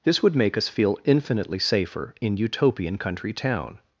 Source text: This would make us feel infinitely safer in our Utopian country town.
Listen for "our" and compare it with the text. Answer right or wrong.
wrong